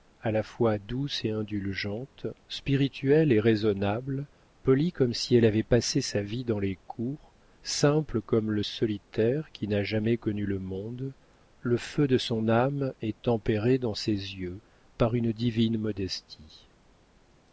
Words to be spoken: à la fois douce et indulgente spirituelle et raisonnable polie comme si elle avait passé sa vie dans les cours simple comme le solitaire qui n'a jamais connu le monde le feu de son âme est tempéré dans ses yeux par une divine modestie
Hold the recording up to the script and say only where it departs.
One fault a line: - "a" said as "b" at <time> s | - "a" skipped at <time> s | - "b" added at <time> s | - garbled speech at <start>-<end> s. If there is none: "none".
none